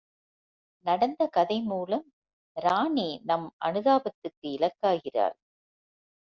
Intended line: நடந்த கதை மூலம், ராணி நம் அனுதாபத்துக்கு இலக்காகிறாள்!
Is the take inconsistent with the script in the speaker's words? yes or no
no